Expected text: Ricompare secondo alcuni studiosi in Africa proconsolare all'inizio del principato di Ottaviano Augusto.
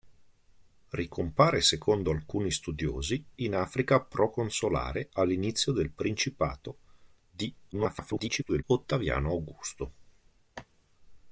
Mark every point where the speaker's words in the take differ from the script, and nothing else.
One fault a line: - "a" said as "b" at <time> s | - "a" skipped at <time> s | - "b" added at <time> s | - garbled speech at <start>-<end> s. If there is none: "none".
- garbled speech at 7.7-8.6 s